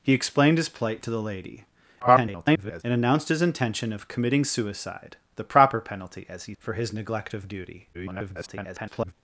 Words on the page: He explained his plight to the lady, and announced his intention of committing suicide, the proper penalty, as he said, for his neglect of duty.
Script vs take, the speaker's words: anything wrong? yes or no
yes